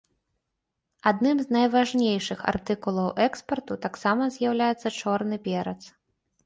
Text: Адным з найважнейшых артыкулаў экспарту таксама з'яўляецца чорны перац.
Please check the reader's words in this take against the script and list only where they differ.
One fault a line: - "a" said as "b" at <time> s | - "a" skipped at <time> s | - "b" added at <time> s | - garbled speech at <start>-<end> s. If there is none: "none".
none